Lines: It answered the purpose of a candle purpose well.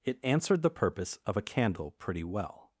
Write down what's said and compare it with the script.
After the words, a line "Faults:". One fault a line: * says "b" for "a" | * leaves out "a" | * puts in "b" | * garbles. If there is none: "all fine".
It answered the purpose of a candle pretty well.
Faults:
* says "pretty" for "purpose"